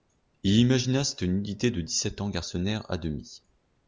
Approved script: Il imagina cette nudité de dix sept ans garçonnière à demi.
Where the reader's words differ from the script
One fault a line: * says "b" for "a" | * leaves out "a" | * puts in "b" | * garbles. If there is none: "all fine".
all fine